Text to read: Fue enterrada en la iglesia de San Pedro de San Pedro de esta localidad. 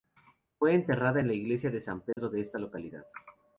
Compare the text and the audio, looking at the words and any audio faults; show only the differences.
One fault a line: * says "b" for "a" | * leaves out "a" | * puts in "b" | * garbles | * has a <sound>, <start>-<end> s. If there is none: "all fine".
* has a dropout, 2.1-2.2 s
* leaves out "San Pedro de"